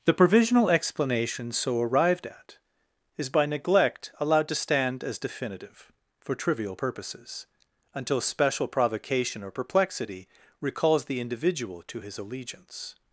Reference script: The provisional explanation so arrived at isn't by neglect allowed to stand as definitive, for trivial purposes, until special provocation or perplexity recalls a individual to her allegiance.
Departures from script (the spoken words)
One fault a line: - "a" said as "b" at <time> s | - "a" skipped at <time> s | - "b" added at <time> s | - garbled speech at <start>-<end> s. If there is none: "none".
- "isn't" said as "is" at 3.2 s
- "a" said as "the" at 11.1 s
- "her" said as "his" at 12.0 s